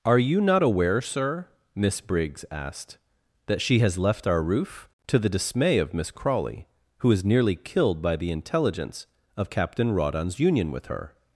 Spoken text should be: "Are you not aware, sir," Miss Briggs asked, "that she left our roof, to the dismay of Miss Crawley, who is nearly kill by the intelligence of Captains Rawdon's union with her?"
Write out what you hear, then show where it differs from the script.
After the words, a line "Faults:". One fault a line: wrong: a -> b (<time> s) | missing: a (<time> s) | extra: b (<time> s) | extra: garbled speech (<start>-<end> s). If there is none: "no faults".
"Are you not aware, sir," Miss Briggs asked, "that she has left our roof, to the dismay of Miss Crawley, who is nearly killed by the intelligence of Captain Rawdon's union with her?"
Faults:
extra: has (3.8 s)
wrong: kill -> killed (7.5 s)
wrong: Captains -> Captain (9.5 s)